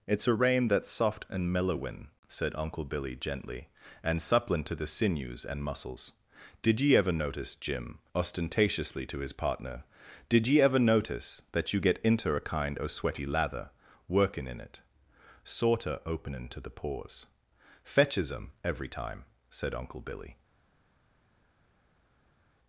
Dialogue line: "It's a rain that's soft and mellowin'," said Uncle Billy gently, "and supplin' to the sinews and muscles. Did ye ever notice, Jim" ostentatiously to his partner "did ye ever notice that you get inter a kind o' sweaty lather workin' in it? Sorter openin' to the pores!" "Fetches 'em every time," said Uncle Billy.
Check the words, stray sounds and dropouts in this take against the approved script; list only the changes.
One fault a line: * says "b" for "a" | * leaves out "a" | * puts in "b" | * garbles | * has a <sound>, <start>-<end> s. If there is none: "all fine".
all fine